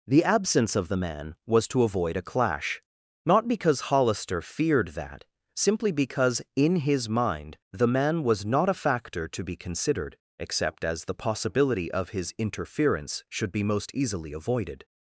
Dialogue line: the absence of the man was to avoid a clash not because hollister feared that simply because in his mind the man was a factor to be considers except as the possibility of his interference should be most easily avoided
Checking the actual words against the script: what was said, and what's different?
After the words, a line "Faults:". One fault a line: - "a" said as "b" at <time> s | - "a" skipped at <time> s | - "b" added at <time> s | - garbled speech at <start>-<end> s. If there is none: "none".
the absence of the man was to avoid a clash not because hollister feared that simply because in his mind the man was not a factor to be considered except as the possibility of his interference should be most easily avoided
Faults:
- "not" added at 8.4 s
- "considers" said as "considered" at 9.6 s